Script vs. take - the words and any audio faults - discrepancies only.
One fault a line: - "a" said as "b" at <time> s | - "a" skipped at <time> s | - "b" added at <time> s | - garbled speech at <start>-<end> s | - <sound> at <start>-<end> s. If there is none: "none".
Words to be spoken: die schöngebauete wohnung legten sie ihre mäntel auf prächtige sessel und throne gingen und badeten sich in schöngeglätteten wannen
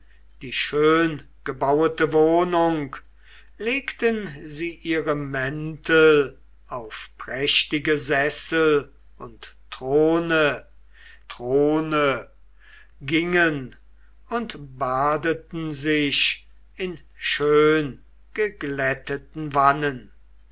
- "throne" added at 11.3 s